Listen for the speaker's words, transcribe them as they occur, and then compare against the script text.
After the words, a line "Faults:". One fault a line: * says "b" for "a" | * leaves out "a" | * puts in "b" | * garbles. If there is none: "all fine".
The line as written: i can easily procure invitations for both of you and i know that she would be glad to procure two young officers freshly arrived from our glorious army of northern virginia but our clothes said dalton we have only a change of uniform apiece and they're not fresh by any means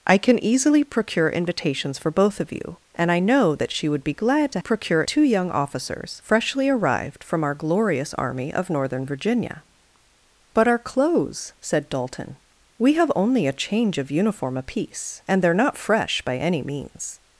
i can easily procure invitations for both of you and i know that she would be glad to procure two young officers freshly arrived from our glorious army of northern virginia but our clothes said dalton we have only a change of uniform apiece and they're not fresh by any means
Faults:
all fine